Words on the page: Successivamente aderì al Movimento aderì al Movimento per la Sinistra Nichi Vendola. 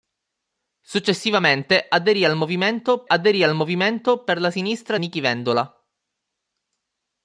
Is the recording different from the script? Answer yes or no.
no